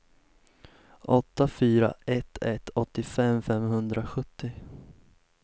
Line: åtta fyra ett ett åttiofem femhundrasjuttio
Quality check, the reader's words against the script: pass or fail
pass